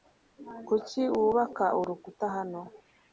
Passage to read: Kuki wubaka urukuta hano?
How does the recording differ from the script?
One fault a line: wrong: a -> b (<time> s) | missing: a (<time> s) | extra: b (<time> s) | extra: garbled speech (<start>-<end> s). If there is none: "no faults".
no faults